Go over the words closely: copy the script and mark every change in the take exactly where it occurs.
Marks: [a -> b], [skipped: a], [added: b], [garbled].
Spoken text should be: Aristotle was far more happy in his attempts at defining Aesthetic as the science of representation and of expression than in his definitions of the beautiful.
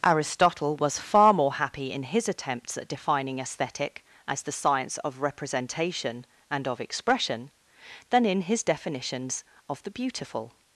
Aristotle was far more happy in his attempts at defining Aesthetic as the science of representation and of expression than in his definitions of the beautiful.